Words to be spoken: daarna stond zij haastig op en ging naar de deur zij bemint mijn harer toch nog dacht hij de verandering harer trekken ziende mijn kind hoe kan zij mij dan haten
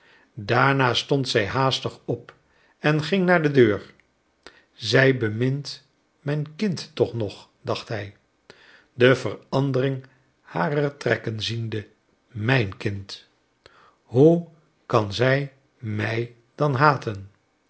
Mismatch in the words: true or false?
true